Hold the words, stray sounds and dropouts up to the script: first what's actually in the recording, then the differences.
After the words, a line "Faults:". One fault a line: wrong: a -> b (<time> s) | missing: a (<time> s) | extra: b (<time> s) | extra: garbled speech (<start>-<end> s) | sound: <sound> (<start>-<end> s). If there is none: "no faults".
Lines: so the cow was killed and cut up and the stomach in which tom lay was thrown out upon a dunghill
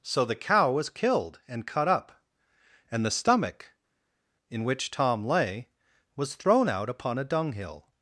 so the cow was killed and cut up and the stomach in which tom lay was thrown out upon a dunghill
Faults:
no faults